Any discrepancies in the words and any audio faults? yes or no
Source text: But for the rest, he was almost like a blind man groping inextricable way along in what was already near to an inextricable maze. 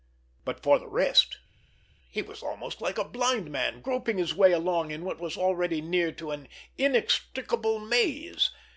yes